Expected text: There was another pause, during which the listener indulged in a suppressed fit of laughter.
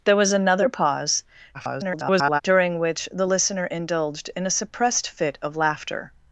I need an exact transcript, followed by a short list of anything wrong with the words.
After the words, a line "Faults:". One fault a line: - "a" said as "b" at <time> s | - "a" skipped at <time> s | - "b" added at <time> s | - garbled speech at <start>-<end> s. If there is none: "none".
There was another pause, [garbled] during which the listener indulged in a suppressed fit of laughter.
Faults:
- garbled speech at 1.5-2.4 s